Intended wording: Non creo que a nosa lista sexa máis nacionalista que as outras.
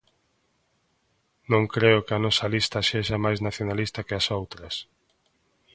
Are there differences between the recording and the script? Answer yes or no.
no